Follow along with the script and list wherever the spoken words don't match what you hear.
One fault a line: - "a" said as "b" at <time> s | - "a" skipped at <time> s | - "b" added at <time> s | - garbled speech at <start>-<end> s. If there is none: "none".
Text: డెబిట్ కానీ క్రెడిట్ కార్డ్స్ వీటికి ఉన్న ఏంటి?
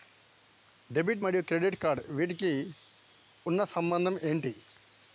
- "కానీ" said as "మరియు" at 1.2 s
- "సంబంధం" added at 3.7 s